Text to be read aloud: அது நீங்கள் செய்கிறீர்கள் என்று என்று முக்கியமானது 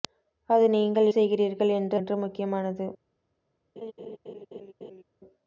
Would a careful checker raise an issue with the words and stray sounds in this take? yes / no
yes